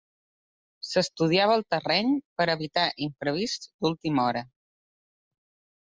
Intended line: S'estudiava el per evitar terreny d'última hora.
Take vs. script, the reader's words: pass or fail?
fail